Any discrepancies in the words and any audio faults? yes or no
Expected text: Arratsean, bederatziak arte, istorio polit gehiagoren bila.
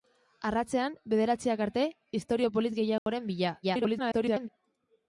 yes